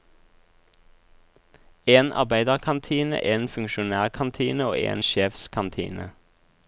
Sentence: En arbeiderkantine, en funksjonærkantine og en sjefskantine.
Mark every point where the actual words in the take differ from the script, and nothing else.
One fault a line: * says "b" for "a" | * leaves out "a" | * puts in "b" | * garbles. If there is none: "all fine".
all fine